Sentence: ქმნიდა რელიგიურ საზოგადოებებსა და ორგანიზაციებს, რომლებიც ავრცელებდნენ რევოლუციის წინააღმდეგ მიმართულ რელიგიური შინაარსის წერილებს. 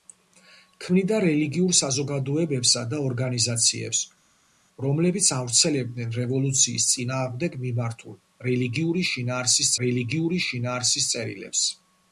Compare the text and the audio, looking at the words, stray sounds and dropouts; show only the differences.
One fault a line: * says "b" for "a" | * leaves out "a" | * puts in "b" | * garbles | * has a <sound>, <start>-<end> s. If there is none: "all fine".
* puts in "რელიგიური შინაარსის"